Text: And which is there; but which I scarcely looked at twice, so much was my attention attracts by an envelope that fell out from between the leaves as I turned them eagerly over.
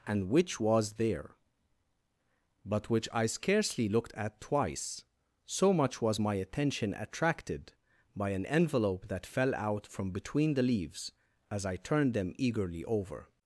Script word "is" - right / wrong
wrong